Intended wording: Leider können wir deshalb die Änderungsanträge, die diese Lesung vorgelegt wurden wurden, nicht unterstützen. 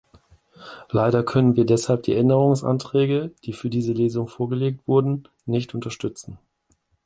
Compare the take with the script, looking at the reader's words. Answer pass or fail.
fail